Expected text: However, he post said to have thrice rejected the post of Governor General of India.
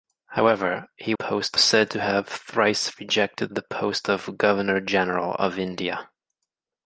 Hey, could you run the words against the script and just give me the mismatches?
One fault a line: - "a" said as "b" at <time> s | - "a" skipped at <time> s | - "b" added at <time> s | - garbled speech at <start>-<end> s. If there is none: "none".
none